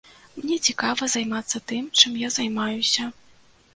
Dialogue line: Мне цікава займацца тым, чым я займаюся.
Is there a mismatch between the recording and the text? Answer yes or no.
no